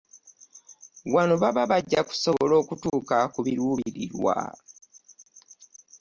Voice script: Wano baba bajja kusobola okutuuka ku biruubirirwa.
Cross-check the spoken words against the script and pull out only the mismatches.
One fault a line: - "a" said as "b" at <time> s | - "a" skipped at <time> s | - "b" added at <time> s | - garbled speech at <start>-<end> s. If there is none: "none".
none